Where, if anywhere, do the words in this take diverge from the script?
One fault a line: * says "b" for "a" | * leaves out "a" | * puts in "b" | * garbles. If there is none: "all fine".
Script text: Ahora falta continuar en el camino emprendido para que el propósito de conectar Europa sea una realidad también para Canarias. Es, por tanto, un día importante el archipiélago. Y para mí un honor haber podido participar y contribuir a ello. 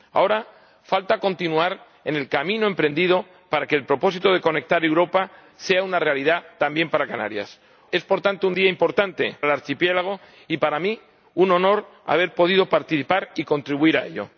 all fine